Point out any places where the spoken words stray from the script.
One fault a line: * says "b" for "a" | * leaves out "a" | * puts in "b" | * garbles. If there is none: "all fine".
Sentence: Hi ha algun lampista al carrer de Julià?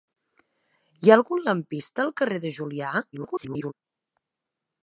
* garbles